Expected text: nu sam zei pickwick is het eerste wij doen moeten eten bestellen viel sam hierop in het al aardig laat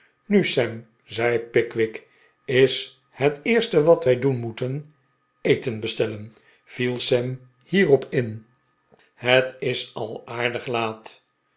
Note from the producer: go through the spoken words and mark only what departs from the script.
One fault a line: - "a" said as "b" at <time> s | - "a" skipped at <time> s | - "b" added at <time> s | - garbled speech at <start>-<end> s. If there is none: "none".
- "wat" added at 3.8 s
- "is" added at 9.6 s